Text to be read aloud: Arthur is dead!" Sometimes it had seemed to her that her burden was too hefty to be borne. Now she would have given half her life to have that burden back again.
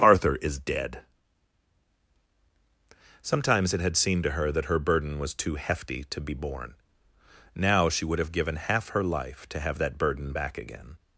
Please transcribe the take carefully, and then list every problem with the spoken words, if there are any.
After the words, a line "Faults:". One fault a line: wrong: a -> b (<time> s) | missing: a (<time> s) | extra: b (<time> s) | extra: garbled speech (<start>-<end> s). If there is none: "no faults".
Arthur is dead!" Sometimes it had seemed to her that her burden was too hefty to be borne. Now she would have given half her life to have that burden back again.
Faults:
no faults